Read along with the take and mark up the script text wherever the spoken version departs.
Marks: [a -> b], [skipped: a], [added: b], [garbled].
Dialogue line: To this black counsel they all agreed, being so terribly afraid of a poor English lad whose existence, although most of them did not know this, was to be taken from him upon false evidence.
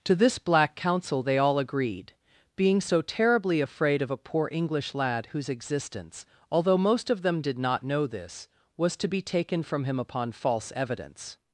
To this black counsel they all agreed, being so terribly afraid of a poor English lad whose existence, although most of them did not know this, was to be taken from him upon false evidence.